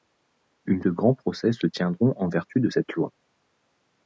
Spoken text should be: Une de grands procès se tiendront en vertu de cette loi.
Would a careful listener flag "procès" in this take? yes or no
no